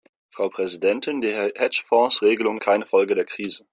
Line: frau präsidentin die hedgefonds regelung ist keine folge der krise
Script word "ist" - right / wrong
wrong